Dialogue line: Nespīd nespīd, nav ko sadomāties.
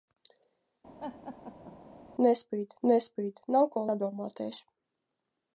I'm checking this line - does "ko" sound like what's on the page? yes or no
yes